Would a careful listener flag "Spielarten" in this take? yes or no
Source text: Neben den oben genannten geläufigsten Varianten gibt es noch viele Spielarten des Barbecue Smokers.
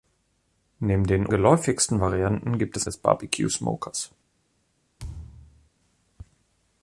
yes